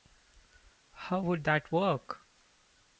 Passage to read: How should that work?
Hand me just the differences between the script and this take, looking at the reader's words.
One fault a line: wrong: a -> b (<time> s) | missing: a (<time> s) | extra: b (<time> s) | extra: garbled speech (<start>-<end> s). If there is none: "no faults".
wrong: should -> would (1.2 s)